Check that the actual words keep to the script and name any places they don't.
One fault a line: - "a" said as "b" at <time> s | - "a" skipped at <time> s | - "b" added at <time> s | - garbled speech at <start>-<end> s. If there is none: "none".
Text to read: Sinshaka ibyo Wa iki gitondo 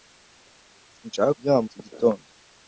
none